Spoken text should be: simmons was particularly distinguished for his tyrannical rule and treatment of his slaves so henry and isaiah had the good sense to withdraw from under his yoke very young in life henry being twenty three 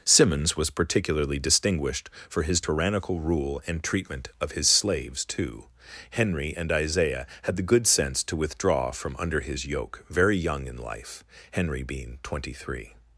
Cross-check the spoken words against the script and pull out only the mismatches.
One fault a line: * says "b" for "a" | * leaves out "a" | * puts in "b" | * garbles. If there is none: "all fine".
* says "too" for "so"